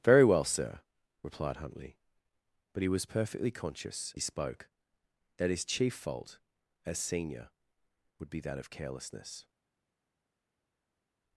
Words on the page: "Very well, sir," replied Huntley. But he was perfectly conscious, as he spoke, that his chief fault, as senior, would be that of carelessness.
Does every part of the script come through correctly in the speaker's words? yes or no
no